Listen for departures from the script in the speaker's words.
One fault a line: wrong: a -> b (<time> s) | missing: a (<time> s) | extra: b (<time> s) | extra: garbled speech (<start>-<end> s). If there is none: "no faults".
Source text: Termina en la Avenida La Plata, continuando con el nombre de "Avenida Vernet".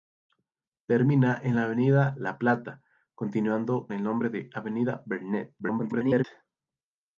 missing: con (3.9 s)
extra: garbled speech (5.6-6.2 s)